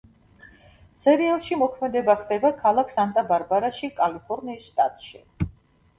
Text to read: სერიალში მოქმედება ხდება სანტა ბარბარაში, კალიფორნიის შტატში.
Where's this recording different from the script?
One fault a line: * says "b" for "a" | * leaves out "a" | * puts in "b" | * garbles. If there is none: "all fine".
* puts in "ქალაქ"